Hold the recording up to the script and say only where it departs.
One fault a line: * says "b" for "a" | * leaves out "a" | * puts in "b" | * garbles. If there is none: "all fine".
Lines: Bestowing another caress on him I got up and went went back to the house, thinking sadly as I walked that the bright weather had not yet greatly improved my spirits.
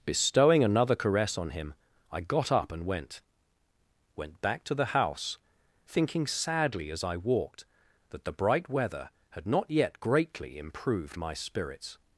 all fine